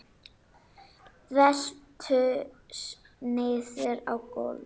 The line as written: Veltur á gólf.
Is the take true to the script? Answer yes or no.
no